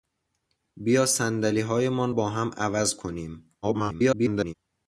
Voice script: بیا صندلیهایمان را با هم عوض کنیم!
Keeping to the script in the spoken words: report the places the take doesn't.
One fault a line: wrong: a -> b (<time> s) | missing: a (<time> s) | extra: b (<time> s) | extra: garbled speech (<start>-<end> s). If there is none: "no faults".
missing: را (2.1 s)
extra: garbled speech (3.6-4.5 s)